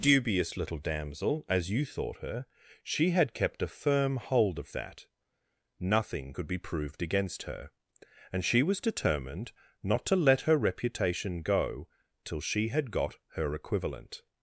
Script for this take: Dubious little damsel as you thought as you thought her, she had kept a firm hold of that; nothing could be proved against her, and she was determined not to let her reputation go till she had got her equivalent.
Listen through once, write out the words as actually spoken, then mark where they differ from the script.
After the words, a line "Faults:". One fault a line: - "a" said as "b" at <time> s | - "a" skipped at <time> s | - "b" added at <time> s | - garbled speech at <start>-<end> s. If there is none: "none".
Dubious little damsel as you thought her, she had kept a firm hold of that; nothing could be proved against her, and she was determined not to let her reputation go till she had got her equivalent.
Faults:
- "as you thought" skipped at 2.2 s